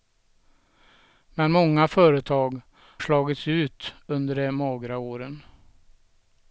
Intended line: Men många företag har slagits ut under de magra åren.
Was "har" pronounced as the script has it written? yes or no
no